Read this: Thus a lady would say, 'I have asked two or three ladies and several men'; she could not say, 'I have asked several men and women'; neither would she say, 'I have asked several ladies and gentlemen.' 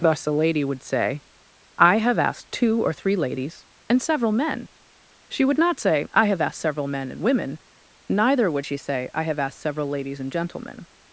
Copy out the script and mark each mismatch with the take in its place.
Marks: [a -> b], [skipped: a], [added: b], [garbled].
Thus a lady would say, 'I have asked two or three ladies and several men'; she [could -> would] not say, 'I have asked several men and women'; neither would she say, 'I have asked several ladies and gentlemen.'